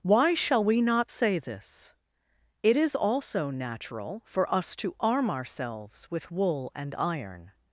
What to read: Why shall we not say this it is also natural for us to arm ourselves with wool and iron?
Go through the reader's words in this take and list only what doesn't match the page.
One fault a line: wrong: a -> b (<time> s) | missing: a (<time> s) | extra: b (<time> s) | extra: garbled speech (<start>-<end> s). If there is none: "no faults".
no faults